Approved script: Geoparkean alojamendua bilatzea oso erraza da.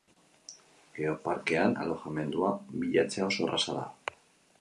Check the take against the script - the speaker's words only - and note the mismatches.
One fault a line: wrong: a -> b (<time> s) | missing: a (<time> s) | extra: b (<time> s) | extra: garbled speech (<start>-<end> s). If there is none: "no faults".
no faults